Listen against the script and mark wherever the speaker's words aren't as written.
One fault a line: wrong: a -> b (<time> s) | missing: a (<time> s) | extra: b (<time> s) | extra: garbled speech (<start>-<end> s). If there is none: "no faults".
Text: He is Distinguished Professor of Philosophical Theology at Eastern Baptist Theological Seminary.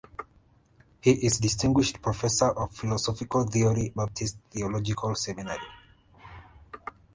missing: at Eastern (3.9 s)